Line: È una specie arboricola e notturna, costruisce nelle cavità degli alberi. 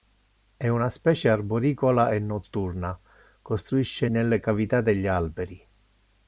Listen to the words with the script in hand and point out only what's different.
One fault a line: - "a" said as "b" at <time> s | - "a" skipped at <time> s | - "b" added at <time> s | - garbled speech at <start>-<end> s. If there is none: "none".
none